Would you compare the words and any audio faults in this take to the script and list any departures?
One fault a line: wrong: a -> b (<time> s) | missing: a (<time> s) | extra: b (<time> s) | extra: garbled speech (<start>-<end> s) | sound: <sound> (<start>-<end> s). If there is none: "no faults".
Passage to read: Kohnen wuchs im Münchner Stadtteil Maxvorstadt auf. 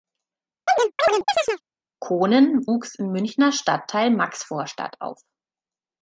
sound: chirp (0.7-1.6 s)